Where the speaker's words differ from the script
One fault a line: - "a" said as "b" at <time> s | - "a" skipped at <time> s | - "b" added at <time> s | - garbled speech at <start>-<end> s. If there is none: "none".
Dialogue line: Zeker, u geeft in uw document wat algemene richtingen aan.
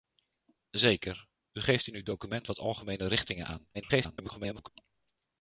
- garbled speech at 3.7-4.7 s